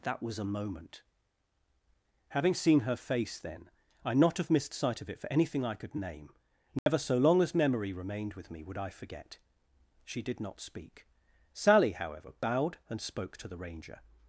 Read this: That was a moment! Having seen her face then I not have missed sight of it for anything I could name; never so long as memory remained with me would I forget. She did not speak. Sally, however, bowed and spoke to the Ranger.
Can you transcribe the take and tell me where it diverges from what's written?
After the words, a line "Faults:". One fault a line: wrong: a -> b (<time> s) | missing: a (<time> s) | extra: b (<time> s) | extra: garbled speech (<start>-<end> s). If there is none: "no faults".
That was a moment! Having seen her face then I not have missed sight of it for anything I could name; never so long as memory remained with me would I forget. She did not speak. Sally, however, bowed and spoke to the Ranger.
Faults:
no faults